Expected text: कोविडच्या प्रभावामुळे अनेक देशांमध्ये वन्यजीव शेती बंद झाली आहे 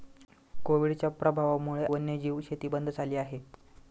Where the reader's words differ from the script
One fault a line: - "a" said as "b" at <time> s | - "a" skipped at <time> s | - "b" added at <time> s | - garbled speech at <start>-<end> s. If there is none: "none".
- "अनेक देशांमध्ये" skipped at 1.9 s